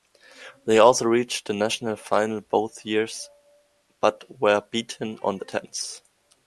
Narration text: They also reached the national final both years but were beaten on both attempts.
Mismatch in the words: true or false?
true